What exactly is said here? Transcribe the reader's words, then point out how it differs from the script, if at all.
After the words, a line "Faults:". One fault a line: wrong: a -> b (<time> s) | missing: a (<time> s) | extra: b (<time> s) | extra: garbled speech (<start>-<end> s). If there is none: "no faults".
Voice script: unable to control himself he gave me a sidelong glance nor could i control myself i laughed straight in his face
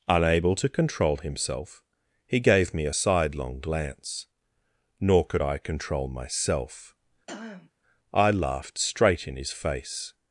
unable to control himself he gave me a sidelong glance nor could i control myself i laughed straight in his face
Faults:
no faults